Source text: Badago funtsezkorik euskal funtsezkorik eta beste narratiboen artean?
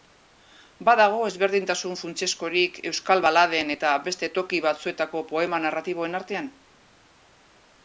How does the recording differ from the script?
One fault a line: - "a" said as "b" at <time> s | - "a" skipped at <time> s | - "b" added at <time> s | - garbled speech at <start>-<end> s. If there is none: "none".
- "ezberdintasun" added at 1.3 s
- "funtsezkorik" said as "baladen" at 3.3 s
- "toki batzuetako poema" added at 4.4 s